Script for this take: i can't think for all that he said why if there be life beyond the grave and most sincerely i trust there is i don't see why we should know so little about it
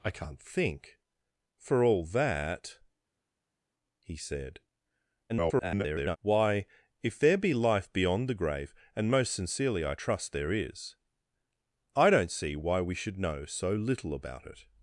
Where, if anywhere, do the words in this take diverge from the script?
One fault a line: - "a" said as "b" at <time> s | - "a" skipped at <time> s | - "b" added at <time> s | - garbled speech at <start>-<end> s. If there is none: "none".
- garbled speech at 5.3-6.2 s